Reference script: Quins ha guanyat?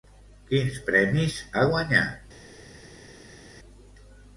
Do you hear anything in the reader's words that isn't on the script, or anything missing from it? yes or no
yes